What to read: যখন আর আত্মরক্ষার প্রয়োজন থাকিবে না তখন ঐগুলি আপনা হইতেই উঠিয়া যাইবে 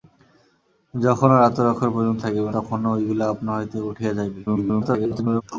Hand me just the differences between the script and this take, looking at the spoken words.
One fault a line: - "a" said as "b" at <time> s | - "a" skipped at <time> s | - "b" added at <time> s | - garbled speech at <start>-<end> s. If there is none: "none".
- "না" skipped at 2.5 s
- garbled speech at 4.5-5.4 s